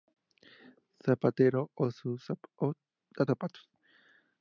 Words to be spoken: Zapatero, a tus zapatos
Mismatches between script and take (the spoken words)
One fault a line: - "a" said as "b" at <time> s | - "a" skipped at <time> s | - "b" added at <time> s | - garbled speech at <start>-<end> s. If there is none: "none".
- "tus" skipped at 3.2 s